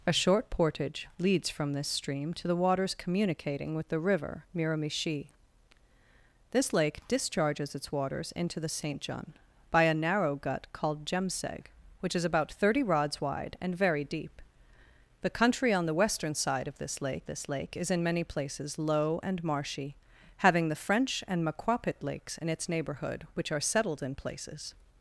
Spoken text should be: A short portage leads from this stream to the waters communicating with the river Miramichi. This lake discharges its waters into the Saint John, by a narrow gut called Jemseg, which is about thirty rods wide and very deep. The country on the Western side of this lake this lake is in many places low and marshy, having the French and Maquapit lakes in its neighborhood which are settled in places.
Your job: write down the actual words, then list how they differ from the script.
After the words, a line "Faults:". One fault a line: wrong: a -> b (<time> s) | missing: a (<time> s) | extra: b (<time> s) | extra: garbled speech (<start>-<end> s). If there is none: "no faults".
A short portage leads from this stream to the waters communicating with the river Miramichi. This lake discharges its waters into the Saint John, by a narrow gut called Jemseg, which is about thirty rods wide and very deep. The country on the Western side of this lake this lake is in many places low and marshy, having the French and Maquapit lakes in its neighborhood which are settled in places.
Faults:
no faults